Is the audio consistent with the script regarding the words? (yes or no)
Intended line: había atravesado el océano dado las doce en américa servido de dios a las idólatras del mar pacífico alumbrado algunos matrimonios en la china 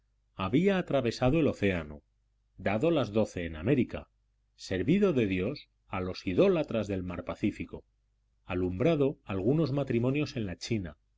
no